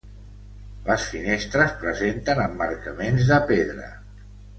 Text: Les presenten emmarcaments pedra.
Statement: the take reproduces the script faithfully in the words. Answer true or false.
false